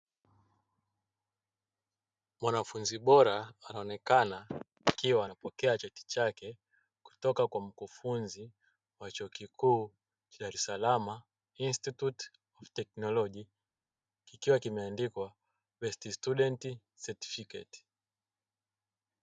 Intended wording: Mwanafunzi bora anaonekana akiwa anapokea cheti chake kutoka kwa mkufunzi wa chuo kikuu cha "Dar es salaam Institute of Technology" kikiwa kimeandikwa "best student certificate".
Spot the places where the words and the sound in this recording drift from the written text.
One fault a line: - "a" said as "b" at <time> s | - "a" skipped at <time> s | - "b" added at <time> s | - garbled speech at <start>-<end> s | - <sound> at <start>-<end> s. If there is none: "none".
none